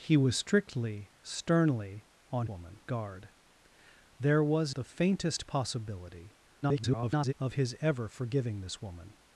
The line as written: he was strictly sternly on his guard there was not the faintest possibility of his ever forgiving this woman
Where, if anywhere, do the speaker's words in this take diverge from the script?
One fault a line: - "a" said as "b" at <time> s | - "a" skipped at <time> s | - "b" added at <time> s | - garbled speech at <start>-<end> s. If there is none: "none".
- "his" said as "woman" at 2.4 s
- "not" skipped at 4.7 s
- garbled speech at 6.6-7.3 s